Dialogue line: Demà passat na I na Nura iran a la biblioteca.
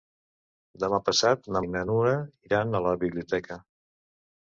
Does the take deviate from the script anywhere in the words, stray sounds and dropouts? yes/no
no